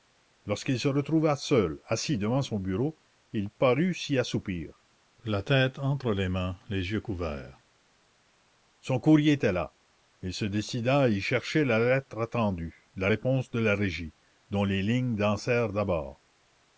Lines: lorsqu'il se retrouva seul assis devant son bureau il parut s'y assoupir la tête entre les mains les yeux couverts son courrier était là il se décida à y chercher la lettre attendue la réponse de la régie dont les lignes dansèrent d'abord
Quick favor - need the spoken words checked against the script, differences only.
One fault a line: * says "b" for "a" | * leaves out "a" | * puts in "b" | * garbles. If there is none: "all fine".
all fine